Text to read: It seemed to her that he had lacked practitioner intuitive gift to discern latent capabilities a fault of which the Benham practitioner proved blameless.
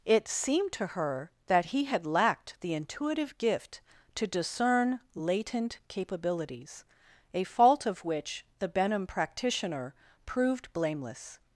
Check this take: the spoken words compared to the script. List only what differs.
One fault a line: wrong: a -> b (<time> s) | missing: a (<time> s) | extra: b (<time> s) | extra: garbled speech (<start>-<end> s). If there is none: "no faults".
wrong: practitioner -> the (2.6 s)